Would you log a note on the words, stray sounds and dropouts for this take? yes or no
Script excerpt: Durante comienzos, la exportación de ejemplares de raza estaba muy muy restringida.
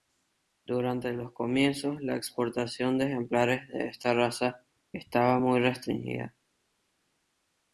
yes